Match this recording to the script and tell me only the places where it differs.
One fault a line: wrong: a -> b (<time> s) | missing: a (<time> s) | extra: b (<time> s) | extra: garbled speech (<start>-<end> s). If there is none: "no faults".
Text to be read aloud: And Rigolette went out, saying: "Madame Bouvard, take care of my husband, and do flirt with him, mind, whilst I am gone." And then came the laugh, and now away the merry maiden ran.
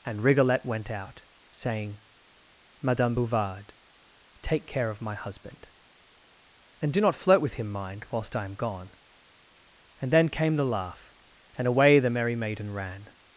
extra: not (7.0 s)
missing: now (11.7 s)